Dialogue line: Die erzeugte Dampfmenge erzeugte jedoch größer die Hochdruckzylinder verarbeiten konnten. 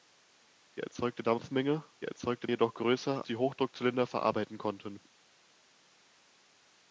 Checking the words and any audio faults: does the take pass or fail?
pass